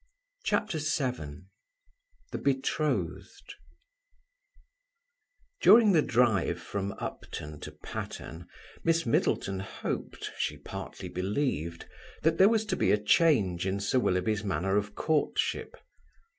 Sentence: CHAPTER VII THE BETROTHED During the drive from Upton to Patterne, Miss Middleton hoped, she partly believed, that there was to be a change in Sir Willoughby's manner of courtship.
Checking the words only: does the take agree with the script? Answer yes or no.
yes